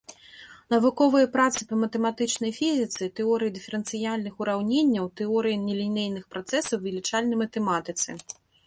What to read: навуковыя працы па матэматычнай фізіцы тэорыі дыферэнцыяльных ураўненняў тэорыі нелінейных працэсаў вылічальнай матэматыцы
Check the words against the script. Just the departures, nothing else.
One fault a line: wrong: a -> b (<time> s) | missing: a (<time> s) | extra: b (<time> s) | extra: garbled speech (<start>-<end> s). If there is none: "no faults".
no faults